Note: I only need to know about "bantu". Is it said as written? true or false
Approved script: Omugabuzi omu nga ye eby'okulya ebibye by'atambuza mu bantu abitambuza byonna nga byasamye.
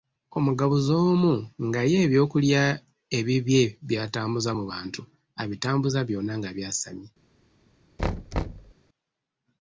true